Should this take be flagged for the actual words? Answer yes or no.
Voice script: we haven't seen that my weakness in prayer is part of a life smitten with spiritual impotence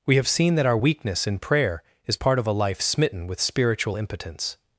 yes